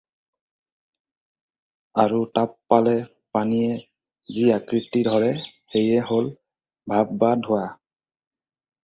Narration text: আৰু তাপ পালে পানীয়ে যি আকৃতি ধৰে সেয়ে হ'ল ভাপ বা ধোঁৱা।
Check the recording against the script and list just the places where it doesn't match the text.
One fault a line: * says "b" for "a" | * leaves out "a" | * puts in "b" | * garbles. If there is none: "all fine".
all fine